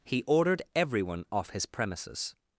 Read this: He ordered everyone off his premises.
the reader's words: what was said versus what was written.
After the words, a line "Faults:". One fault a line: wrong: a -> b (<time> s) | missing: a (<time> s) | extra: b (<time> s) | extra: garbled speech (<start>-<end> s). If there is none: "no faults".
He ordered everyone off his premises.
Faults:
no faults